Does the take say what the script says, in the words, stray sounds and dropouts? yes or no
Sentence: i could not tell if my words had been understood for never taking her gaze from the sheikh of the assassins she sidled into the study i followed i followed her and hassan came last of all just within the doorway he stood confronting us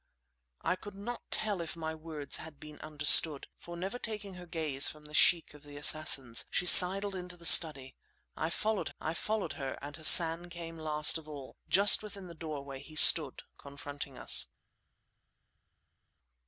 yes